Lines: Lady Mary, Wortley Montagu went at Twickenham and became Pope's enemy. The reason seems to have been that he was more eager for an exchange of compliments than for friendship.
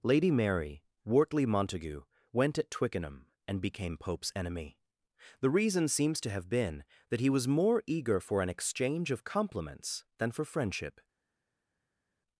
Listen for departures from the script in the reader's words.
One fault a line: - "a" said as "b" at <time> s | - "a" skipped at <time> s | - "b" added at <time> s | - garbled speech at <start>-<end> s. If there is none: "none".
none